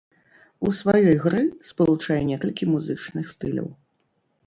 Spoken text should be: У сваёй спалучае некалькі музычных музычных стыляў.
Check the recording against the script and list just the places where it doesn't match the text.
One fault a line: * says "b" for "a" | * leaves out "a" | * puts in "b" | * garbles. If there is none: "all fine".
* puts in "гры"
* leaves out "музычных"